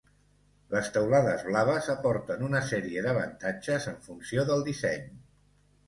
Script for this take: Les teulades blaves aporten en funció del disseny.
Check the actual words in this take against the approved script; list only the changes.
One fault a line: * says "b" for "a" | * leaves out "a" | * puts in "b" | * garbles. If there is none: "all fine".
* puts in "una sèrie d'avantatges"